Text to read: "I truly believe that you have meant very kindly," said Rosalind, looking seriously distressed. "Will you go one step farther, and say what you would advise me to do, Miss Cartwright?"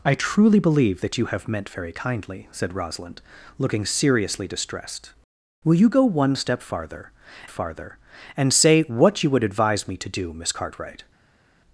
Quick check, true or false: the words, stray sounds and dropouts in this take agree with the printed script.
false